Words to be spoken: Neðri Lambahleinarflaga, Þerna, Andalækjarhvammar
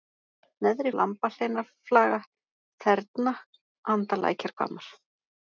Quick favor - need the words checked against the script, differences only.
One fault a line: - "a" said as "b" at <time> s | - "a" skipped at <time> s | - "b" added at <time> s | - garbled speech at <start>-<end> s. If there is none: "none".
none